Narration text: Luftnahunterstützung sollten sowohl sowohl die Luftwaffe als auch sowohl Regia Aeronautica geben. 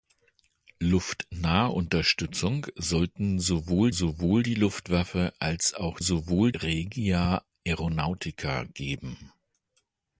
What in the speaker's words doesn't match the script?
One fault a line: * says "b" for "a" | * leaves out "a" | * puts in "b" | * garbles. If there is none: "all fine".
all fine